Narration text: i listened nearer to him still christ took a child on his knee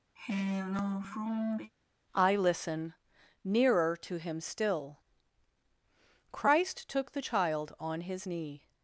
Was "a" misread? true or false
true